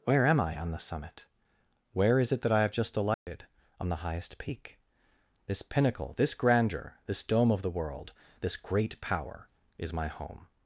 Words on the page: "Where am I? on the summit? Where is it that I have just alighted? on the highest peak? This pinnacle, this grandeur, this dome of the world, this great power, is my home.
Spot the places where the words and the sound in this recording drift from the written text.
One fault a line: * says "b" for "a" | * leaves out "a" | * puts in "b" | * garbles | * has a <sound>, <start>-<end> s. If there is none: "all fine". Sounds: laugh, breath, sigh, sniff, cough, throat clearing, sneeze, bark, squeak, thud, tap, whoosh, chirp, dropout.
* has a dropout, 3.1-3.3 s